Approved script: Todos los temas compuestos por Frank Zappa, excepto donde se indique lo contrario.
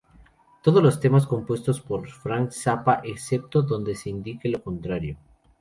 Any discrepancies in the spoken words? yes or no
no